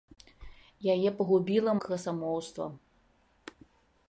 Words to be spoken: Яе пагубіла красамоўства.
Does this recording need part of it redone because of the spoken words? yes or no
no